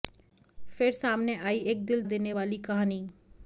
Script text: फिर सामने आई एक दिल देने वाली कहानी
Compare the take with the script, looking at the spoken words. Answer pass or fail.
pass